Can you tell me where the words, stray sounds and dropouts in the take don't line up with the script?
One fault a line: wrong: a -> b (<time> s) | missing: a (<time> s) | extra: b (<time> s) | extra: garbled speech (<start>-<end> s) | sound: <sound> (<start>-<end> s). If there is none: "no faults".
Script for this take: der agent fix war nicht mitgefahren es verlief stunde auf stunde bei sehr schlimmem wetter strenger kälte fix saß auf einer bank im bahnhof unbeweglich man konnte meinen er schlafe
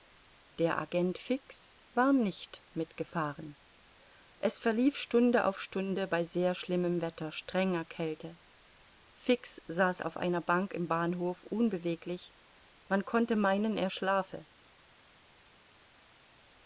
no faults